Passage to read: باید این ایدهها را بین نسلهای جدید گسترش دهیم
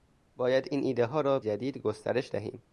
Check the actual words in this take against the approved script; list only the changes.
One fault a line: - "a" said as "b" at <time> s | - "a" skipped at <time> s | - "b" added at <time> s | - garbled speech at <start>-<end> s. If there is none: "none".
- "بین نسلهای" skipped at 1.4 s